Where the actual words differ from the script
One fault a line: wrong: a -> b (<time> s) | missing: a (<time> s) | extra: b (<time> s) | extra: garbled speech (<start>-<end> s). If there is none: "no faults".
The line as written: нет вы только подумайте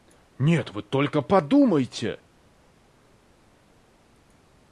no faults